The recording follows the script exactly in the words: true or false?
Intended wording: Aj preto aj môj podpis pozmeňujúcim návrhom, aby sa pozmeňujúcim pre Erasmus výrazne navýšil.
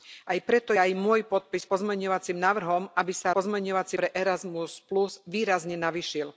true